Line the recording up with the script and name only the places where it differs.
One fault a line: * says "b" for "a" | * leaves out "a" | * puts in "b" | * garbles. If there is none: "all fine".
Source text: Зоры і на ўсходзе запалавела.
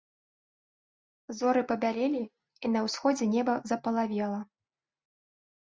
* puts in "пабялелі"
* puts in "неба"